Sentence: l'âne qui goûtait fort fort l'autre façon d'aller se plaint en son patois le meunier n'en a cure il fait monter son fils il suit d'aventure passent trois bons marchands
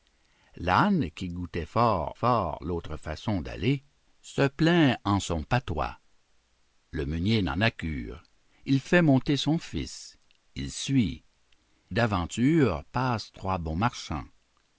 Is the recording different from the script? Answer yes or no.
no